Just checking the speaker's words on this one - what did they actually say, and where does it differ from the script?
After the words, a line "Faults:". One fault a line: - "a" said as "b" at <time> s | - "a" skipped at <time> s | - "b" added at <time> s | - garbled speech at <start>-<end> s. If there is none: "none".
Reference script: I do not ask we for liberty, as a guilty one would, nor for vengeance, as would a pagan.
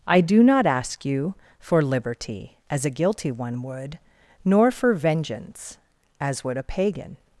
I do not ask you for liberty, as a guilty one would, nor for vengeance, as would a pagan.
Faults:
- "we" said as "you" at 1.1 s